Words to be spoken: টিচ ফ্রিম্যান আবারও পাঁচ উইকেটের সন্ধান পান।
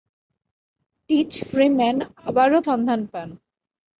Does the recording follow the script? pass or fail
fail